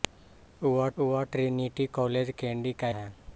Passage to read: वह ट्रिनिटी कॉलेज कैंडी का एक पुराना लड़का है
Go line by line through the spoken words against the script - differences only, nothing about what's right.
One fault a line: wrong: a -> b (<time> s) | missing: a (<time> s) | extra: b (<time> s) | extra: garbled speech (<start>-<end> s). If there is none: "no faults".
extra: वह (1.0 s)
missing: एक पुराना लड़का (2.9 s)